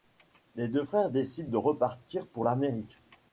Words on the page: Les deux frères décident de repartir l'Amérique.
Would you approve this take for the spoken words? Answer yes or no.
no